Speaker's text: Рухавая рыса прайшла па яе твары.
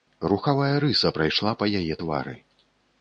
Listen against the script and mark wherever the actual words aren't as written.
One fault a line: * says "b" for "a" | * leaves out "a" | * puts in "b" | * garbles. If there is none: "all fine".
all fine